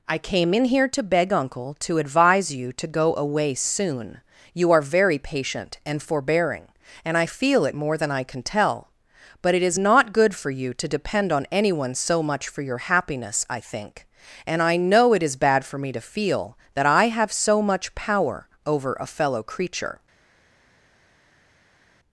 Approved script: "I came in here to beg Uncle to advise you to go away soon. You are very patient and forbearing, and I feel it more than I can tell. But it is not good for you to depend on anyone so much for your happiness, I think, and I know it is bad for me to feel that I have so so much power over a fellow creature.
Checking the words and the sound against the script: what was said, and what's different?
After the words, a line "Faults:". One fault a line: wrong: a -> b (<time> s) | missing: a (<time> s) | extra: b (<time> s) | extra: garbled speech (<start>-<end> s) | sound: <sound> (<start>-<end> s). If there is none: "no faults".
"I came in here to beg Uncle to advise you to go away soon. You are very patient and forbearing, and I feel it more than I can tell. But it is not good for you to depend on anyone so much for your happiness, I think, and I know it is bad for me to feel that I have so much power over a fellow creature.
Faults:
missing: so (17.6 s)